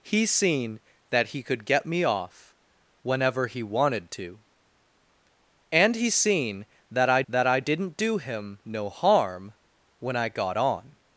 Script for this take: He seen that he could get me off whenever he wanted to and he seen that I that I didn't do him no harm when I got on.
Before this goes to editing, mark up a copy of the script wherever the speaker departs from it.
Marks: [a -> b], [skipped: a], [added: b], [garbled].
He seen that he could get me off whenever he wanted to and he seen that I that I didn't do him no harm when I got on.